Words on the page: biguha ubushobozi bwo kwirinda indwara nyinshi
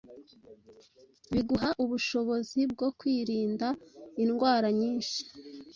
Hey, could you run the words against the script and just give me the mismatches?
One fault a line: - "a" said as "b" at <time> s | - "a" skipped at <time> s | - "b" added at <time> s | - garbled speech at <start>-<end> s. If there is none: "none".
none